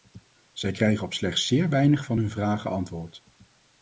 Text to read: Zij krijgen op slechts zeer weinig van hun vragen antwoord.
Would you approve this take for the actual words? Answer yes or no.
yes